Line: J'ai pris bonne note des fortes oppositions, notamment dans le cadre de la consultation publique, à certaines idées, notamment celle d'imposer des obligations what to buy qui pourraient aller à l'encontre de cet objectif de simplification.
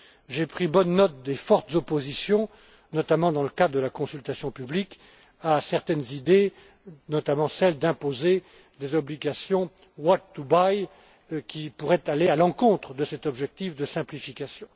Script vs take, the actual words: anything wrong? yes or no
no